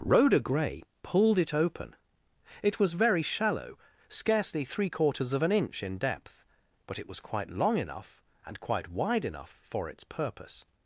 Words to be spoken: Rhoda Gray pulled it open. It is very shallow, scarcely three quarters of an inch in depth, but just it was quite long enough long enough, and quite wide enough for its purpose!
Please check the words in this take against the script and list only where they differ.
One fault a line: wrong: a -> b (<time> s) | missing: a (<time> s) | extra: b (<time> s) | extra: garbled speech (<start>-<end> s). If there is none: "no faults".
wrong: is -> was (2.8 s)
missing: just (7.0 s)
missing: long enough (8.2 s)